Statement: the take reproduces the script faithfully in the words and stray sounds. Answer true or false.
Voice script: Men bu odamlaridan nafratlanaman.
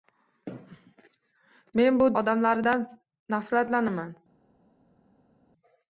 true